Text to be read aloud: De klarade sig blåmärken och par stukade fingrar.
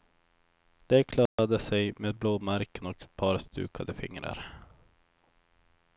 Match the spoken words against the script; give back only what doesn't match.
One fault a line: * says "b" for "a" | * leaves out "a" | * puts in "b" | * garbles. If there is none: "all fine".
* puts in "med"
* puts in "ett"